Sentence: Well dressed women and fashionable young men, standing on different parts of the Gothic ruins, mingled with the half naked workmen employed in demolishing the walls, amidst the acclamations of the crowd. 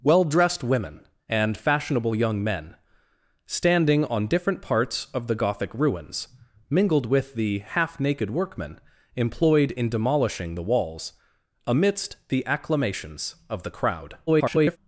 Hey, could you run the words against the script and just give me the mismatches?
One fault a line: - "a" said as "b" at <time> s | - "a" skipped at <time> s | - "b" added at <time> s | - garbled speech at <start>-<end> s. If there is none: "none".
- garbled speech at 14.3-14.8 s